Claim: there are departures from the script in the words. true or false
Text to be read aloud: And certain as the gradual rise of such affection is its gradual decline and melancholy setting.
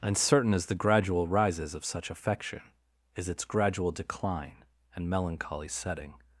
true